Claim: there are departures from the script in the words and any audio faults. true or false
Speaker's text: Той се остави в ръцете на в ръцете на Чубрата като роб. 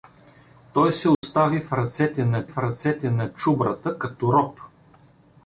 true